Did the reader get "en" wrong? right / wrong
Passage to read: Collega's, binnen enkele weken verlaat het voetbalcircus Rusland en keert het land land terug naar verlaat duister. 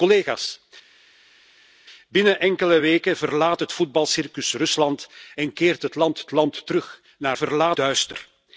right